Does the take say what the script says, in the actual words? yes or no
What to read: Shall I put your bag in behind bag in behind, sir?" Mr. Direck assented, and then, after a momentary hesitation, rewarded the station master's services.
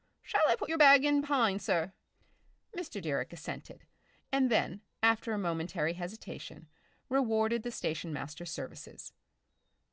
no